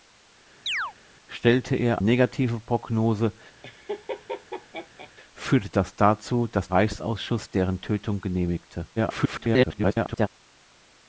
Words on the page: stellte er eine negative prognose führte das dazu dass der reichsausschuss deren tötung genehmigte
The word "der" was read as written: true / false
false